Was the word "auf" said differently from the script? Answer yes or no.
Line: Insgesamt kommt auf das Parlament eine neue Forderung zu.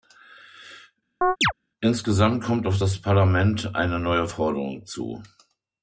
no